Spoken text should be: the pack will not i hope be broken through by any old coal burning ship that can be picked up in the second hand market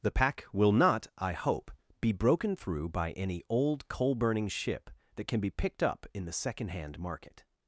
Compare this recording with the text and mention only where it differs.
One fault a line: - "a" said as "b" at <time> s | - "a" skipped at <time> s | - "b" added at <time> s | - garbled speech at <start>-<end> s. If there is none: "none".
none